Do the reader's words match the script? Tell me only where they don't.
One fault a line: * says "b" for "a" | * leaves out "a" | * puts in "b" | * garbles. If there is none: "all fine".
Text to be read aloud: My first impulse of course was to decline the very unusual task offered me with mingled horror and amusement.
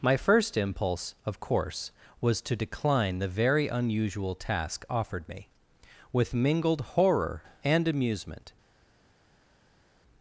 all fine